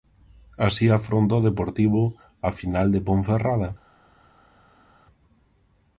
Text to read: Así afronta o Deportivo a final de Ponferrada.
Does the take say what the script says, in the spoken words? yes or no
yes